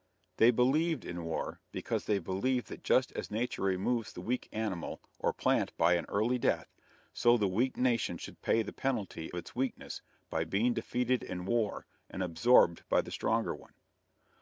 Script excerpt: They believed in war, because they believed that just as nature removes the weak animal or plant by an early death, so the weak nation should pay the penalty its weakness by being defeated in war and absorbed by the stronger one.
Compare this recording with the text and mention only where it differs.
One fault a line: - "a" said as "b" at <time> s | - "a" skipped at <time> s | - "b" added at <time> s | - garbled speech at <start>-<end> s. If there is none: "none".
none